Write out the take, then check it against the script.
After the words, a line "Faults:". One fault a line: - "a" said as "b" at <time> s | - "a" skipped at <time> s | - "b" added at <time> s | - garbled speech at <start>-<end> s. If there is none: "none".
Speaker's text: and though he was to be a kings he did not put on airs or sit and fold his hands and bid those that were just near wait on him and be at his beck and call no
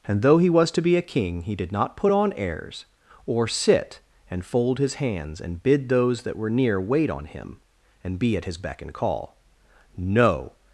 and though he was to be a king he did not put on airs or sit and fold his hands and bid those that were near wait on him and be at his beck and call no
Faults:
- "kings" said as "king" at 1.0 s
- "just" skipped at 6.5 s